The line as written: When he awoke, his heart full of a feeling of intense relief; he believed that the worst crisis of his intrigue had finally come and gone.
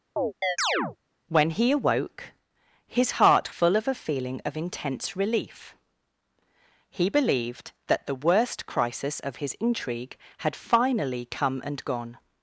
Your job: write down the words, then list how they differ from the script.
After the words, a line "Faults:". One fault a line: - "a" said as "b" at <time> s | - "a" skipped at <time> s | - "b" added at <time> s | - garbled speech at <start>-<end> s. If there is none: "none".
When he awoke, his heart full of a feeling of intense relief; he believed that the worst crisis of his intrigue had finally come and gone.
Faults:
none